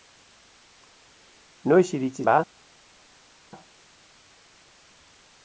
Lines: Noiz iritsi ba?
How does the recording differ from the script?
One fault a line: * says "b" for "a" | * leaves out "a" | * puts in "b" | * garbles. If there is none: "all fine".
all fine